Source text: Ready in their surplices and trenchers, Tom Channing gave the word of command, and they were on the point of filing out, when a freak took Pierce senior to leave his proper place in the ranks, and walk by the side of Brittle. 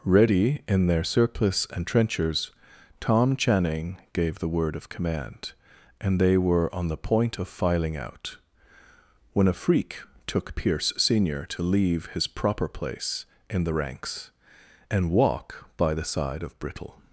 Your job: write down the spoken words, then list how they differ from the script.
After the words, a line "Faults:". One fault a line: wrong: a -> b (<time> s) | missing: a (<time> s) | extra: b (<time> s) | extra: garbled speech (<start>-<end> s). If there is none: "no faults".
Ready in their surplice and trenchers, Tom Channing gave the word of command, and they were on the point of filing out, when a freak took Pierce senior to leave his proper place in the ranks, and walk by the side of Brittle.
Faults:
wrong: surplices -> surplice (1.0 s)